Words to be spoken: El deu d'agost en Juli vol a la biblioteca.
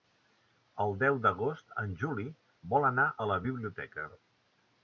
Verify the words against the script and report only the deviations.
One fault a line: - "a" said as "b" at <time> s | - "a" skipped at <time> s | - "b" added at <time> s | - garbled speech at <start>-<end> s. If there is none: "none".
- "anar" added at 2.9 s